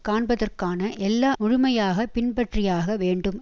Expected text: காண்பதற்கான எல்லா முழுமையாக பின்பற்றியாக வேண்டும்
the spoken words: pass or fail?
pass